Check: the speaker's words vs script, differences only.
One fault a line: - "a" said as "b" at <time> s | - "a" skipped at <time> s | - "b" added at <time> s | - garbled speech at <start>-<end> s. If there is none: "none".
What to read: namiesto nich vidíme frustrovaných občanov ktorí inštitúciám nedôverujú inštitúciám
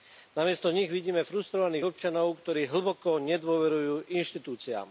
- "inštitúciám" said as "hlboko" at 2.7 s